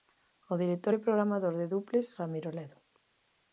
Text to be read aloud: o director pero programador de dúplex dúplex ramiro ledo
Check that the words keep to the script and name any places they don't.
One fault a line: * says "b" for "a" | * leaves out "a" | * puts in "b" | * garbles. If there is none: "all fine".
* says "e" for "pero"
* leaves out "dúplex"